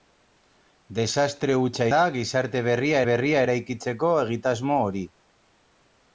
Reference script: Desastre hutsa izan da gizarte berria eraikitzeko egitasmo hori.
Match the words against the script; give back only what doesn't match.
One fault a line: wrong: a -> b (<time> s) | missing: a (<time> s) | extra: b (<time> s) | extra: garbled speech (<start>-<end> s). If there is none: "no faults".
missing: izan (1.9 s)
extra: berria (3.1 s)